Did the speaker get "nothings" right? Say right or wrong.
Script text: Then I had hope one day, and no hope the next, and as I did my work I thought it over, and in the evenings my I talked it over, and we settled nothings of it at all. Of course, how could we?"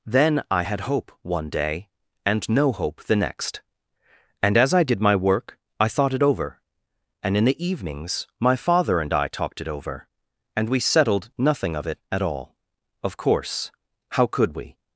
wrong